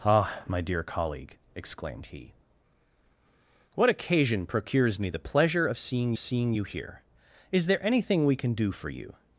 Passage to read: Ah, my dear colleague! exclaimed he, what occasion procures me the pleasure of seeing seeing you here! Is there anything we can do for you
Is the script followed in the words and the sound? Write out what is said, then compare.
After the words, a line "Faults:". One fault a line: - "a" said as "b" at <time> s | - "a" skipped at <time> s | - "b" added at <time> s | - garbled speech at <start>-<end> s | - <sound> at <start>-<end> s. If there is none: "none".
Ah, my dear colleague! exclaimed he, what occasion procures me the pleasure of seeing seeing you here! Is there anything we can do for you
Faults:
none